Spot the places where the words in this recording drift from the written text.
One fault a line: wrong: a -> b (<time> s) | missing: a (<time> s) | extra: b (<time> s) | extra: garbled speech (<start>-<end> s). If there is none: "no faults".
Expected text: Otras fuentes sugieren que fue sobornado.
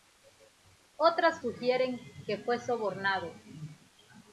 missing: fuentes (1.4 s)